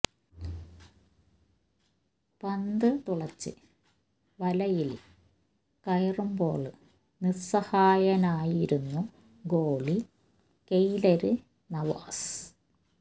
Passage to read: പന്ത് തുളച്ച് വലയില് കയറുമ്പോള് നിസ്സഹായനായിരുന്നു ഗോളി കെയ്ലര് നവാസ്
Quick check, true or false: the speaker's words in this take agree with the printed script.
true